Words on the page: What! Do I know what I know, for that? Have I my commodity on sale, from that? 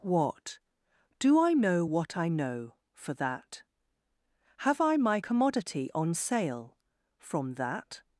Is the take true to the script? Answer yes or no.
yes